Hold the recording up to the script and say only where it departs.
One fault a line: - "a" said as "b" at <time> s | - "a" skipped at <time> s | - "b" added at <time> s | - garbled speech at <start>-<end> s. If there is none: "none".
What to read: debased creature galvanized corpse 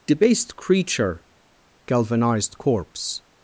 none